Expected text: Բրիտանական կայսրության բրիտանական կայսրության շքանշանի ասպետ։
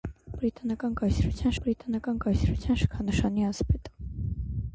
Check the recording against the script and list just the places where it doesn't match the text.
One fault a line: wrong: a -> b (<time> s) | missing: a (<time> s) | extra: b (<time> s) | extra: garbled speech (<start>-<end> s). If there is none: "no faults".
no faults